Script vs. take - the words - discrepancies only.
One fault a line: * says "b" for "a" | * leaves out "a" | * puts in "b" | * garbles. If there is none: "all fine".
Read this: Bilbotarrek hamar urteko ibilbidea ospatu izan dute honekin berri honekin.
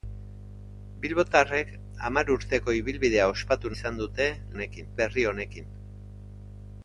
all fine